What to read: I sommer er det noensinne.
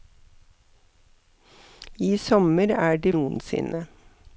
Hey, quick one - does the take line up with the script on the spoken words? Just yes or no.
yes